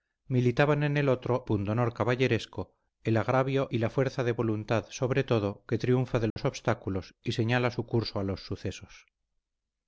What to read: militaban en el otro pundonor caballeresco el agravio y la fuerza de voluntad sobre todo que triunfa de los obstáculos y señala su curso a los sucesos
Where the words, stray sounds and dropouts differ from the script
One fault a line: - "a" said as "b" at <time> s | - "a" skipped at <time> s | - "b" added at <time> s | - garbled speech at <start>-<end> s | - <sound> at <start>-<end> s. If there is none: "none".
- dropout at 6.3-6.4 s